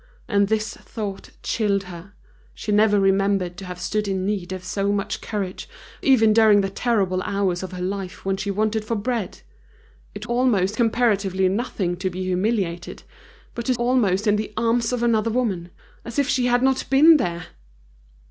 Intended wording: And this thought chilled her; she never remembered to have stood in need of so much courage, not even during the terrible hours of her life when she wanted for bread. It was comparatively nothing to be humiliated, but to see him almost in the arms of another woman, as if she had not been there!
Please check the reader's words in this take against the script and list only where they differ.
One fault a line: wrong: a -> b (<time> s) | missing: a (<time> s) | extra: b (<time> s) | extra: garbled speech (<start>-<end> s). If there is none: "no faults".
missing: not (5.7 s)
wrong: was -> almost (10.2 s)
missing: see him (13.7 s)